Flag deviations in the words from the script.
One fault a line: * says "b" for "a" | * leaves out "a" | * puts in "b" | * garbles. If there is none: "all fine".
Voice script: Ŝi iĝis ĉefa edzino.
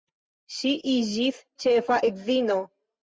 all fine